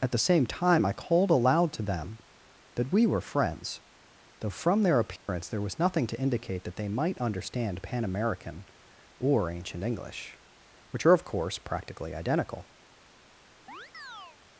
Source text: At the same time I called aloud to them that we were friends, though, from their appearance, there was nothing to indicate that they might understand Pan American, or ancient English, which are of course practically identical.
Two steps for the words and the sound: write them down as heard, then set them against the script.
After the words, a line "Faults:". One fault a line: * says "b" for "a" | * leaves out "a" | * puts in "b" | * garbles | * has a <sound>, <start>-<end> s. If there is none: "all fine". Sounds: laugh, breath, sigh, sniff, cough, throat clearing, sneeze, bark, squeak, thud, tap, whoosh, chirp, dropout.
At the same time I called aloud to them that we were friends, though, from their appearance, there was nothing to indicate that they might understand Pan American, or ancient English, which are of course practically identical.
Faults:
* has a dropout, 5.2-5.3 s
* has a chirp, 13.7-14.4 s